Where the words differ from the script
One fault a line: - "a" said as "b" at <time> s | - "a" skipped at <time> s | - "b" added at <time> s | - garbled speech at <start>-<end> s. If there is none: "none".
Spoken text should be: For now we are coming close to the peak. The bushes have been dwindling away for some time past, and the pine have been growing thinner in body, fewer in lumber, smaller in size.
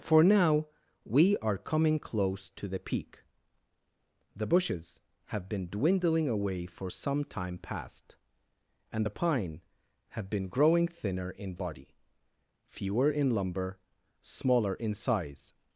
none